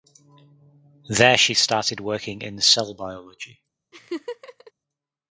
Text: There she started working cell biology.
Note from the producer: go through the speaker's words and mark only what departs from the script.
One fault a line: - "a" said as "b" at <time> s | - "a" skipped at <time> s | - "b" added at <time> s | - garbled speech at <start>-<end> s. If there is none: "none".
- "in" added at 2.4 s